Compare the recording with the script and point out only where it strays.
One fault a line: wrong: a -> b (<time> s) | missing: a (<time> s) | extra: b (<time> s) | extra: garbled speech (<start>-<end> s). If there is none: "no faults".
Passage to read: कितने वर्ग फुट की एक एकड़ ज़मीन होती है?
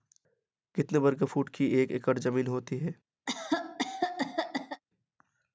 no faults